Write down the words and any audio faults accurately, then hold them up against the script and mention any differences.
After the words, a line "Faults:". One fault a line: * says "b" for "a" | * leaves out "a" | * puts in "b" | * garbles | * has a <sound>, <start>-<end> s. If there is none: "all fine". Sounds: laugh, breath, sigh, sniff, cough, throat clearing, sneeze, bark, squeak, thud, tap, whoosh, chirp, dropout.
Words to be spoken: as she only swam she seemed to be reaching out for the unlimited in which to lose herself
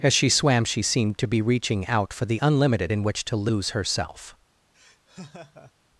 as she swam she seemed to be reaching out for the unlimited in which to lose herself
Faults:
* leaves out "only"
* has a laugh, 4.7-5.7 s